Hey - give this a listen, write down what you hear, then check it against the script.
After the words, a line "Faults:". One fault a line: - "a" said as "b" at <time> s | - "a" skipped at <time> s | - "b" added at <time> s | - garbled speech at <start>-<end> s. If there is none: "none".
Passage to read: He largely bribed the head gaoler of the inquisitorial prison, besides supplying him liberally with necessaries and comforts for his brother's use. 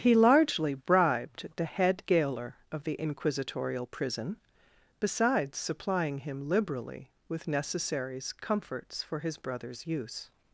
He largely bribed the head gaoler of the inquisitorial prison, besides supplying him liberally with necessaries comforts for his brother's use.
Faults:
- "and" skipped at 8.3 s